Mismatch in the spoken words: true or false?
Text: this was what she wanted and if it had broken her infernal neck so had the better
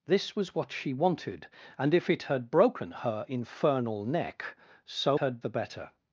false